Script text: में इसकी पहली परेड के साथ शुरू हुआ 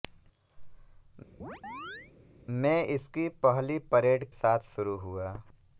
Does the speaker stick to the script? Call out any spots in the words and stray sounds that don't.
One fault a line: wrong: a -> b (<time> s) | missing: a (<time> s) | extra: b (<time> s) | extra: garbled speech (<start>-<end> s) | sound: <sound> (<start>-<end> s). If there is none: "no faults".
sound: chirp (1.4-2.1 s)
missing: के (4.3 s)